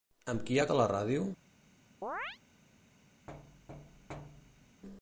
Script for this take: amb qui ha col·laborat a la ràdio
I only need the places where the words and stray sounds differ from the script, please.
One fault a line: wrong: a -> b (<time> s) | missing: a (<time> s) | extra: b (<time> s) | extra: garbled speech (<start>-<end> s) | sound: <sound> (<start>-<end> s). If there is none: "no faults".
missing: col·laborat (0.6 s)
sound: chirp (2.0-2.4 s)
sound: thud (3.3-4.8 s)